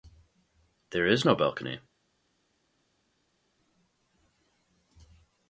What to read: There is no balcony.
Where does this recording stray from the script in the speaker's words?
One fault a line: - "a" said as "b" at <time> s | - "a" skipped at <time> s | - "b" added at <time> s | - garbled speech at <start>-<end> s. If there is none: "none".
none